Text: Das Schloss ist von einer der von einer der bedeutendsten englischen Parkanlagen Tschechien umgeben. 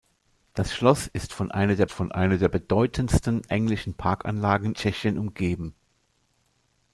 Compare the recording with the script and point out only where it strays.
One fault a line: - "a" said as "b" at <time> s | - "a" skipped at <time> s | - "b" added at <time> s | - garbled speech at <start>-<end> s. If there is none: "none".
none